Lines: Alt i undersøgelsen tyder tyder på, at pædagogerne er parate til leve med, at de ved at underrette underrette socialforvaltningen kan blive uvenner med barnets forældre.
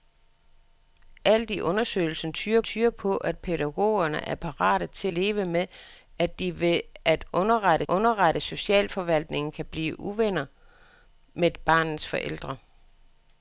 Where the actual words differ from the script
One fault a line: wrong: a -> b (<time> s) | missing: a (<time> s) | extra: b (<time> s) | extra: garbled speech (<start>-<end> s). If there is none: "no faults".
no faults